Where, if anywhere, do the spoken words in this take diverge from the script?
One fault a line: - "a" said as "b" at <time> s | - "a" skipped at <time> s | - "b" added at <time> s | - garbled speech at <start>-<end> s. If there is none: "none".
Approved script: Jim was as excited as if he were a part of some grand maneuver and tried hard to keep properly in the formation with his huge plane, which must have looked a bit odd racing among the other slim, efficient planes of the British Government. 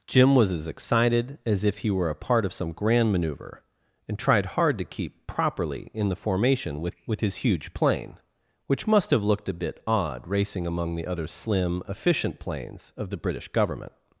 - "with" added at 7.1 s